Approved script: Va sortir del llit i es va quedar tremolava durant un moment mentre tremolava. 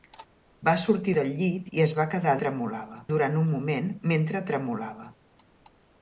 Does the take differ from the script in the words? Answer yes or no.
no